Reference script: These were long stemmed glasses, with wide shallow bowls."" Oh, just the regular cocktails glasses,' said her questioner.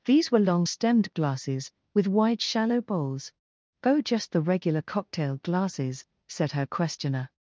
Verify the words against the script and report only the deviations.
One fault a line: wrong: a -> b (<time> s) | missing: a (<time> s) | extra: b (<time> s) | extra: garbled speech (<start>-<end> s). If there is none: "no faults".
wrong: cocktails -> cocktail (4.8 s)